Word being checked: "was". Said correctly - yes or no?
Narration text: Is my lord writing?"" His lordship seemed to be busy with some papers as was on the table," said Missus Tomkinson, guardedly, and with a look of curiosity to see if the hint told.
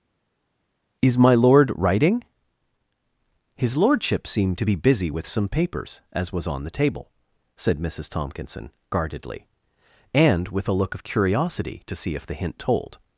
yes